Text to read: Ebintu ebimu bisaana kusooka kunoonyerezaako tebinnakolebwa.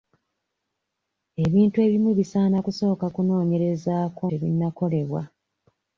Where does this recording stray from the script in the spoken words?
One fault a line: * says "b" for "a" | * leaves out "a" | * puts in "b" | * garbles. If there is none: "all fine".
all fine